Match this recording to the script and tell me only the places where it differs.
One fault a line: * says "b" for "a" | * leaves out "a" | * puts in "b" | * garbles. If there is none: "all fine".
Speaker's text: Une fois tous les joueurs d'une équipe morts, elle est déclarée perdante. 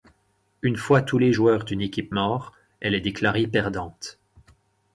all fine